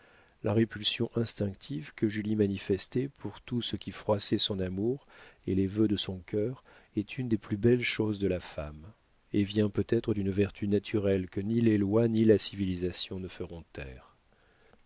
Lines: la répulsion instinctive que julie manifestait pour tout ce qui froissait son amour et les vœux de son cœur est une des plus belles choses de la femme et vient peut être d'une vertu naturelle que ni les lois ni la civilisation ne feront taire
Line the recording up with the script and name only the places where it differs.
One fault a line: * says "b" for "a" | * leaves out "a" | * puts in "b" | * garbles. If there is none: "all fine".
all fine